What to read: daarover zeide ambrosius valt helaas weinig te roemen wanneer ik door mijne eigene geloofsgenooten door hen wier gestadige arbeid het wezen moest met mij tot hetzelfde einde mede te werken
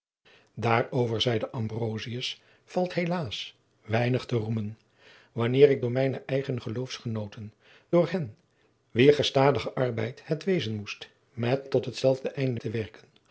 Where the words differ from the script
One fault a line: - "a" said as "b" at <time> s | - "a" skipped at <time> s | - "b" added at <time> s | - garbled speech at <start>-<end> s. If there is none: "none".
- "mij" skipped at 11.7 s
- "mede" skipped at 12.6 s